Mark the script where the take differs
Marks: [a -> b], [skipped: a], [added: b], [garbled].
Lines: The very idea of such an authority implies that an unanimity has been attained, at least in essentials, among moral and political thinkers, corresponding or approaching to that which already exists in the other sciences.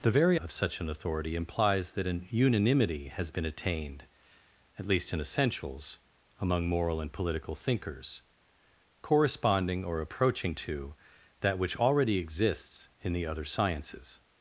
The very [skipped: idea] of such an authority implies that an unanimity has been attained, at least in essentials, among moral and political thinkers, corresponding or approaching to that which already exists in the other sciences.